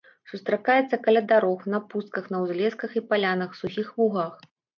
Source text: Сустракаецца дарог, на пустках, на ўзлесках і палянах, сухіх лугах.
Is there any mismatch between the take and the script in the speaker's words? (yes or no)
yes